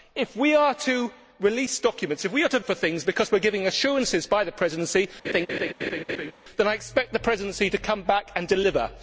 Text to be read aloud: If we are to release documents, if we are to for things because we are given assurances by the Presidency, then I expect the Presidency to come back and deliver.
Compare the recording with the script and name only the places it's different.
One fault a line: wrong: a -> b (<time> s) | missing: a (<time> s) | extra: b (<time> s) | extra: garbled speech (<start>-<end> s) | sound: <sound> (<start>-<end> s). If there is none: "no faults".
sound: laugh (5.2-6.3 s)